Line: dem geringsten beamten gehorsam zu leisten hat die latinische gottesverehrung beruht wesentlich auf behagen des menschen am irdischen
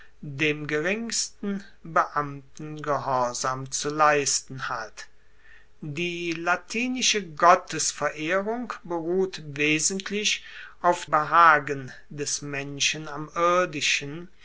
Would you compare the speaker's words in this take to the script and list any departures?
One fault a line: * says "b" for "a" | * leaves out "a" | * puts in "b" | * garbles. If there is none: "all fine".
all fine